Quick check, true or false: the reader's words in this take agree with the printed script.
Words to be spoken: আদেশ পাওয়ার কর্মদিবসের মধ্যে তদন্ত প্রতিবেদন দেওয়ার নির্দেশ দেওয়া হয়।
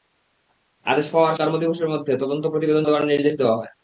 true